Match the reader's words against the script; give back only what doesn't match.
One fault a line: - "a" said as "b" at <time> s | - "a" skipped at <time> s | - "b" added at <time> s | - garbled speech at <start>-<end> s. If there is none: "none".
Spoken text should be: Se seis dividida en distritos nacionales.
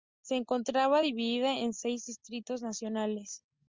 - "seis" said as "encontraba" at 0.3 s
- "seis" added at 1.7 s